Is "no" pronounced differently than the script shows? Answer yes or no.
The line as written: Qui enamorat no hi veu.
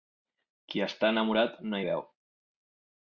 no